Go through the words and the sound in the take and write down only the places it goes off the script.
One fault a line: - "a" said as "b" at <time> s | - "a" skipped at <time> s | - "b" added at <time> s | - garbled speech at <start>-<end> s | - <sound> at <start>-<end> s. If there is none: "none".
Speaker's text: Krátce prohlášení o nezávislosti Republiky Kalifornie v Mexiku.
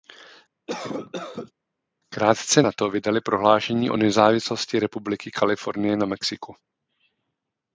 - cough at 0.7-1.5 s
- "nato vydali" added at 2.6 s
- "v" said as "na" at 6.0 s